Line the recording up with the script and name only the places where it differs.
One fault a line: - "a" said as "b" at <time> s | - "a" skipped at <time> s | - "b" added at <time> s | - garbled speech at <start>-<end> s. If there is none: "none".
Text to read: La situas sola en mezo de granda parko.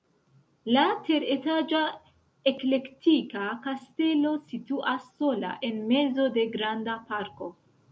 - "teretaĝa eklektika kastelo" added at 1.1 s